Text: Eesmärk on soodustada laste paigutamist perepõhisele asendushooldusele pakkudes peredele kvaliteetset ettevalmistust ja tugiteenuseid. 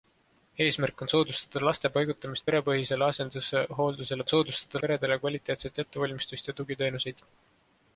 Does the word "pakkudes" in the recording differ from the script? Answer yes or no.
yes